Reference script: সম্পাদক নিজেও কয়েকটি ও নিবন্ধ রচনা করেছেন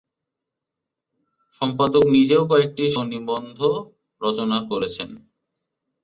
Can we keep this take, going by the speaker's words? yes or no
yes